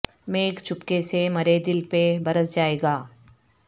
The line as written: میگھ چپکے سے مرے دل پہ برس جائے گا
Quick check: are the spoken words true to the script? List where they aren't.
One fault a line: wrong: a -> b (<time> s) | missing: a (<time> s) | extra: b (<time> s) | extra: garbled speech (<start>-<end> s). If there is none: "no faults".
no faults